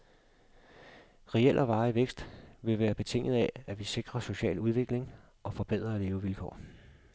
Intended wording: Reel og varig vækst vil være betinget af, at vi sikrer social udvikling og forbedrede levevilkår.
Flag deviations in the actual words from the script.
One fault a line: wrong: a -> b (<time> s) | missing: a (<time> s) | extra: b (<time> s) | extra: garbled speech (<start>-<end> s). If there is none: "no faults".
no faults